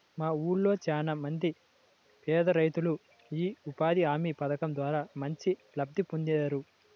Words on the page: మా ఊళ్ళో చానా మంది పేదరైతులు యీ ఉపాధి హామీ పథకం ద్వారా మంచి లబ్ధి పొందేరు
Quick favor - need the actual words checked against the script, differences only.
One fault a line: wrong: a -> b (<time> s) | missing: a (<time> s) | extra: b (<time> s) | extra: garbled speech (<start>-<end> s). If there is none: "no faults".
no faults